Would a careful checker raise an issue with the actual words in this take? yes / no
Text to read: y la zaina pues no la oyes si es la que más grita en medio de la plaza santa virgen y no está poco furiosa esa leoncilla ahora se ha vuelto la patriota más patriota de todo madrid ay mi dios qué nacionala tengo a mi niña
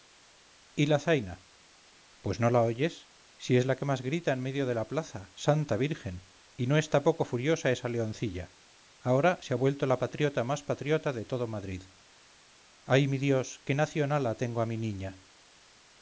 no